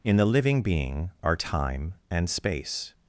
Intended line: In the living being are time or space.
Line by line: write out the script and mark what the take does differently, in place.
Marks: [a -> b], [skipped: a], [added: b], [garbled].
In the living being are time [or -> and] space.